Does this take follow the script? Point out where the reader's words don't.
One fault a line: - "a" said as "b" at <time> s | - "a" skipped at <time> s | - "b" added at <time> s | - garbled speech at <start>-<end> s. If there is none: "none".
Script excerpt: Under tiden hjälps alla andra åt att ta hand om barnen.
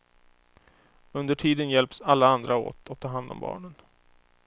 none